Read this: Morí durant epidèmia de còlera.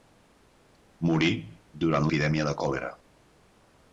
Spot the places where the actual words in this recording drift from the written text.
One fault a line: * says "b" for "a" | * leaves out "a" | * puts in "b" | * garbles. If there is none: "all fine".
all fine